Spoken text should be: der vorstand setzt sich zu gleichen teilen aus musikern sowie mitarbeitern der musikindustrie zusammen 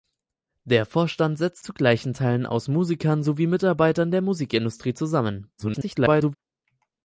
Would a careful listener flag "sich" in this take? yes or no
yes